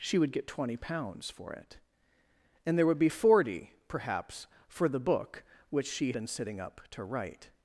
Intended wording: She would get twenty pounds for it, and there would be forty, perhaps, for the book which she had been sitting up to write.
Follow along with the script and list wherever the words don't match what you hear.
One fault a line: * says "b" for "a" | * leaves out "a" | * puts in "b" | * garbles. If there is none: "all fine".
* leaves out "had"